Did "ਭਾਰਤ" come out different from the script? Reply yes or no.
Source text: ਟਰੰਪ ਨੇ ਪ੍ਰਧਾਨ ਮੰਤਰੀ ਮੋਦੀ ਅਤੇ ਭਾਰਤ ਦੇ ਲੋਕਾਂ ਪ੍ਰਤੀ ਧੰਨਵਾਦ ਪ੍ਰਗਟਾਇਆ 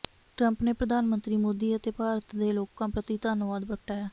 no